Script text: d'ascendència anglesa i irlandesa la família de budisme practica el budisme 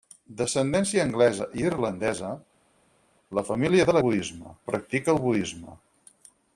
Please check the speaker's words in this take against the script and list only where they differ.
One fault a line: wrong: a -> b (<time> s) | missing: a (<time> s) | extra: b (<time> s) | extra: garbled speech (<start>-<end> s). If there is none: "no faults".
no faults